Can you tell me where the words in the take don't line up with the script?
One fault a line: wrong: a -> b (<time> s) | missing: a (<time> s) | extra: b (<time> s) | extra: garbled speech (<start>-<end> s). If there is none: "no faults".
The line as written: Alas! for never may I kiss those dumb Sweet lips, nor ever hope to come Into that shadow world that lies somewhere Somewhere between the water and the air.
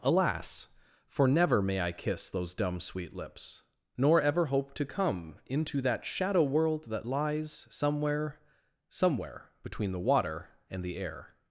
no faults